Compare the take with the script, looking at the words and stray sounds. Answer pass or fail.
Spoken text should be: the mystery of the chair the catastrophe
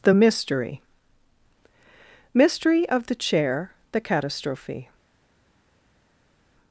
fail